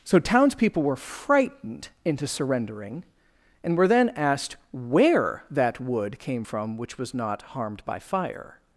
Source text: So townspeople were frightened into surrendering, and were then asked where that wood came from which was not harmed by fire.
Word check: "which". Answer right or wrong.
right